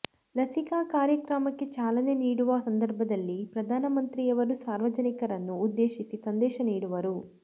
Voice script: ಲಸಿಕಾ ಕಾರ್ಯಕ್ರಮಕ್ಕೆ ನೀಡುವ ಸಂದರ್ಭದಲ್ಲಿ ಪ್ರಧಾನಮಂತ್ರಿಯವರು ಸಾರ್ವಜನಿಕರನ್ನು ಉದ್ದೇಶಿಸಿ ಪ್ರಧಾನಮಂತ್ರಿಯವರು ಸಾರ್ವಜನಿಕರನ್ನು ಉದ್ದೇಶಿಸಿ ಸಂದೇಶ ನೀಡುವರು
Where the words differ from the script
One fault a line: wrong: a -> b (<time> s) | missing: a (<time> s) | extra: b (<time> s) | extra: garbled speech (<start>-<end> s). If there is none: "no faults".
extra: ಚಾಲನೆ (1.8 s)
missing: ಪ್ರಧಾನಮಂತ್ರಿಯವರು ಸಾರ್ವಜನಿಕರನ್ನು ಉದ್ದೇಶಿಸಿ (6.2 s)